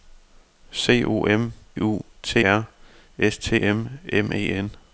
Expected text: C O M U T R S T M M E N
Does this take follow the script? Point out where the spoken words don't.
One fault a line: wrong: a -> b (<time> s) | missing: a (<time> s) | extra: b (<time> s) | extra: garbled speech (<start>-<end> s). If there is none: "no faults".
no faults